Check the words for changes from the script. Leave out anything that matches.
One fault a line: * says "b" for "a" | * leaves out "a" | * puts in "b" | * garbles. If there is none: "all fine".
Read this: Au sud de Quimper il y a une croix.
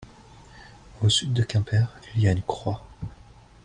all fine